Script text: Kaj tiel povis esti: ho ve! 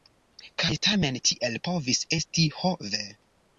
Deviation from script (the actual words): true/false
true